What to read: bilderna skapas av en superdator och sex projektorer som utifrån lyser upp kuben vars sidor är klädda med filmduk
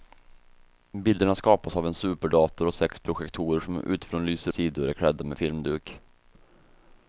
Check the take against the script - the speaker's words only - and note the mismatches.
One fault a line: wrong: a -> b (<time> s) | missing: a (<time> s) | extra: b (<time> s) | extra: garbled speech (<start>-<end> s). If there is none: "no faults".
missing: upp kuben vars (4.5 s)